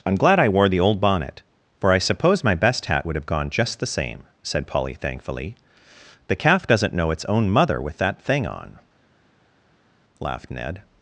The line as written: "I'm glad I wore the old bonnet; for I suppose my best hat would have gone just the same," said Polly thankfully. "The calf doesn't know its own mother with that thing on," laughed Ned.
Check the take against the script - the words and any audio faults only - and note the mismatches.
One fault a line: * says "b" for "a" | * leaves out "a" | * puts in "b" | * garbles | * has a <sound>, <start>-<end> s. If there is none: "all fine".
all fine